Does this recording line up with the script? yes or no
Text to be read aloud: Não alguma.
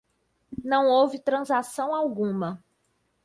no